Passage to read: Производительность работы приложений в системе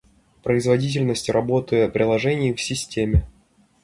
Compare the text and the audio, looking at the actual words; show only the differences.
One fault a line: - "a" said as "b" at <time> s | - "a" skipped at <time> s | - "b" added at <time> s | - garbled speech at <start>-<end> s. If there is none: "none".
none